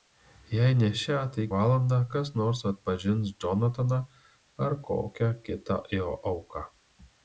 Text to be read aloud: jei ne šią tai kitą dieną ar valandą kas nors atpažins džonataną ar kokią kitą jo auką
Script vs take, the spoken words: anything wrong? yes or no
yes